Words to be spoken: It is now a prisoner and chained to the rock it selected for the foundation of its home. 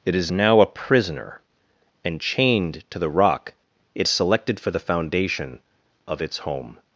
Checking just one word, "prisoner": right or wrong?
right